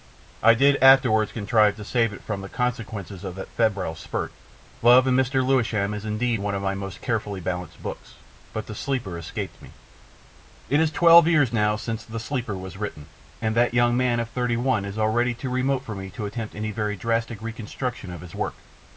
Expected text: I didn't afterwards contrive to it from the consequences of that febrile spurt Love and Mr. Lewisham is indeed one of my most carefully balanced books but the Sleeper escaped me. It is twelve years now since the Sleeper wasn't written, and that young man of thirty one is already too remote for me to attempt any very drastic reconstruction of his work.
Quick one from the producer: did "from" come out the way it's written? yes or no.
yes